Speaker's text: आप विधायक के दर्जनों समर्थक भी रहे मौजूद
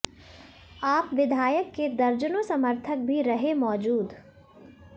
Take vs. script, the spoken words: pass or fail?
pass